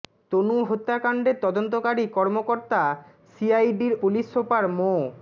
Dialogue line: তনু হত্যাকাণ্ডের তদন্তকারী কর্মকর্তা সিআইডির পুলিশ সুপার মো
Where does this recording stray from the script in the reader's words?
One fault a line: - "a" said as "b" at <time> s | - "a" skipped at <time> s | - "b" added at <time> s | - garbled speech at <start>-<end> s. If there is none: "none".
none